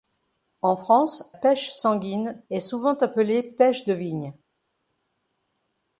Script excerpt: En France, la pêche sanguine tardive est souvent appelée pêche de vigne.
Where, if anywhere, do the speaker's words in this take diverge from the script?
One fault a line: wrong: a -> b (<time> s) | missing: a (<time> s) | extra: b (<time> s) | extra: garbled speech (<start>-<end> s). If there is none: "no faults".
missing: la (1.3 s)
missing: tardive (2.4 s)